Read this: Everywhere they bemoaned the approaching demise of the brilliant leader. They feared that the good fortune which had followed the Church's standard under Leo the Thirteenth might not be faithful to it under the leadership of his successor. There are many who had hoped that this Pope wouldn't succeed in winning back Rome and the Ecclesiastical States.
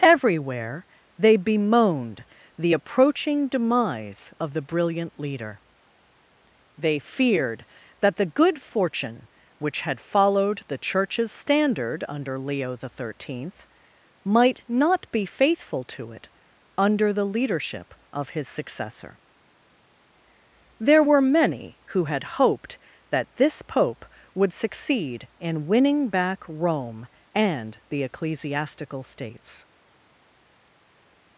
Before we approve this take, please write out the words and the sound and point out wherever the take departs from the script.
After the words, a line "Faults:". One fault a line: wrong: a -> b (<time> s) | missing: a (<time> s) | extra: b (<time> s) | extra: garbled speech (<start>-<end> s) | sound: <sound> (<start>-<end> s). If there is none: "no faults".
Everywhere they bemoaned the approaching demise of the brilliant leader. They feared that the good fortune which had followed the Church's standard under Leo the Thirteenth might not be faithful to it under the leadership of his successor. There were many who had hoped that this Pope would succeed in winning back Rome and the Ecclesiastical States.
Faults:
wrong: are -> were (21.0 s)
wrong: wouldn't -> would (24.3 s)